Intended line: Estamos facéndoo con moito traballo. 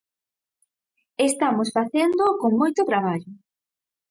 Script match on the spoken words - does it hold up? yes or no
yes